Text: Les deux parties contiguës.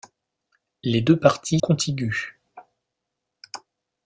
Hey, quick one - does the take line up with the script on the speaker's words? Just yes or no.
yes